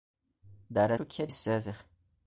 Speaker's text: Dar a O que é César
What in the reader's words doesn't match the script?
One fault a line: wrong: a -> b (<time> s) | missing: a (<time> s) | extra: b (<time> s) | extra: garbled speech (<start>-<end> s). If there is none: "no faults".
no faults